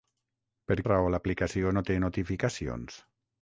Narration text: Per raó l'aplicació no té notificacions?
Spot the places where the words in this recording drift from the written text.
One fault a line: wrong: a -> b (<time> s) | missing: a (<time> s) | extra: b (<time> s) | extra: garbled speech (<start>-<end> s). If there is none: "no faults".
no faults